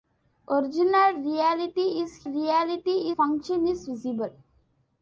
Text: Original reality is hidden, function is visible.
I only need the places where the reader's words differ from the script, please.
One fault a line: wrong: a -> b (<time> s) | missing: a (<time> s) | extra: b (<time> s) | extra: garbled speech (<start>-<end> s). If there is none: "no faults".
wrong: hidden -> reality (2.3 s)